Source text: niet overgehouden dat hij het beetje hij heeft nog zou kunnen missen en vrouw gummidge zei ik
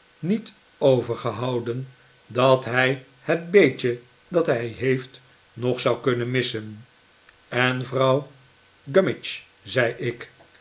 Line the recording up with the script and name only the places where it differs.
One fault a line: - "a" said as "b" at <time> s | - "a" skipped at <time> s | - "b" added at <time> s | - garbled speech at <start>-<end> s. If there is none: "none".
- "dat" added at 4.3 s